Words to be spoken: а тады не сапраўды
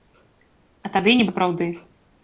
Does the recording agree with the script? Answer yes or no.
yes